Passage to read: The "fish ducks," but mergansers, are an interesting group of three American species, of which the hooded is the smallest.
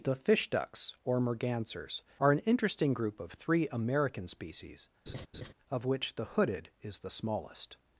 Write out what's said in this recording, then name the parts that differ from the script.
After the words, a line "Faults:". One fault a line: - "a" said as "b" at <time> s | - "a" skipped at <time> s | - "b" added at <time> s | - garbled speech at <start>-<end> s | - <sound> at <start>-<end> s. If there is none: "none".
The "fish ducks," or mergansers, are an interesting group of three American species, of which the hooded is the smallest.
Faults:
- "but" said as "or" at 1.0 s
- laugh at 5.1-5.5 s